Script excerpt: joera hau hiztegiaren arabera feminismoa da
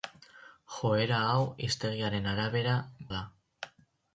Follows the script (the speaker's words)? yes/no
no